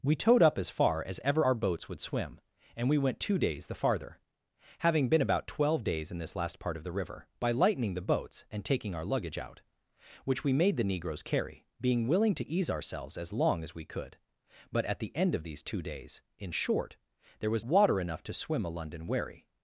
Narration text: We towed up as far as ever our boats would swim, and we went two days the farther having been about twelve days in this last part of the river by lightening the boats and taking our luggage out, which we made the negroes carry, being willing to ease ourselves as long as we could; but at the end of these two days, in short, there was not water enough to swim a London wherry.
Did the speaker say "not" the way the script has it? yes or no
no